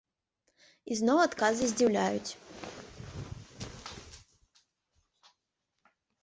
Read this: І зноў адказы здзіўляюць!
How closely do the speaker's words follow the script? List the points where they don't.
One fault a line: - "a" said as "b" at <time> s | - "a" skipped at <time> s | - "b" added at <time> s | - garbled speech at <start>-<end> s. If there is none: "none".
none